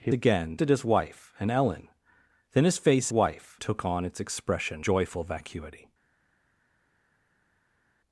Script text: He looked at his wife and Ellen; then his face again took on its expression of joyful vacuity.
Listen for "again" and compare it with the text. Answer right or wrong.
wrong